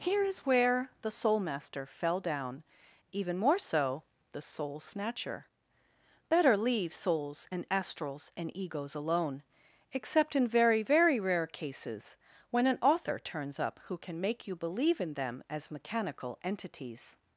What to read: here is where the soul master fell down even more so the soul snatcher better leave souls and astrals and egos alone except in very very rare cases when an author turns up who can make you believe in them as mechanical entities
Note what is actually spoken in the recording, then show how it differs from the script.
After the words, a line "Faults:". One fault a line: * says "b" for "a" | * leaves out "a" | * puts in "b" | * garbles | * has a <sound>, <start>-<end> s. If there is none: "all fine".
here is where the soul master fell down even more so the soul snatcher better leave souls and astrals and egos alone except in very very rare cases when an author turns up who can make you believe in them as mechanical entities
Faults:
all fine